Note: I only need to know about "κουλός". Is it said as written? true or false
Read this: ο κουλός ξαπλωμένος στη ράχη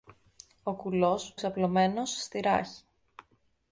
true